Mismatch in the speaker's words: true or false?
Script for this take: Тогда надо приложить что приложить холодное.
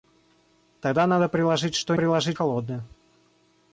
false